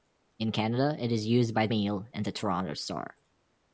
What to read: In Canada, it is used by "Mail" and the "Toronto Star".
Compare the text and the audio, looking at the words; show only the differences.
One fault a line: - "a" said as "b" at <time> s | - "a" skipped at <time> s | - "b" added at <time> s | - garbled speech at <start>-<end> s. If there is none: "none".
none